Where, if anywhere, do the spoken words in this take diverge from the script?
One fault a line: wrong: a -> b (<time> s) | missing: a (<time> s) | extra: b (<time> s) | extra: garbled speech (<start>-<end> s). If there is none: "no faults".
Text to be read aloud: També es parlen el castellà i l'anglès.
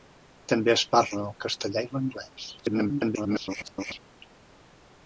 extra: garbled speech (2.6-4.0 s)